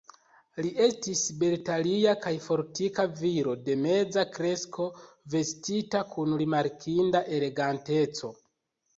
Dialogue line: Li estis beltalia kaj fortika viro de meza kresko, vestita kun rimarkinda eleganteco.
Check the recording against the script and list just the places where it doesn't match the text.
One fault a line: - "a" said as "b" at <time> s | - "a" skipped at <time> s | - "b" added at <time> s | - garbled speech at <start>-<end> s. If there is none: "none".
none